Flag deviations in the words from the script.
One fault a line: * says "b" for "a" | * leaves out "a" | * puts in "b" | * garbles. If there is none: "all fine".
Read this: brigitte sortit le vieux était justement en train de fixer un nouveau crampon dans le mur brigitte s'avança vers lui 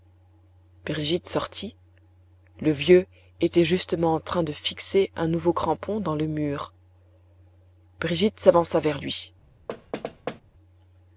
all fine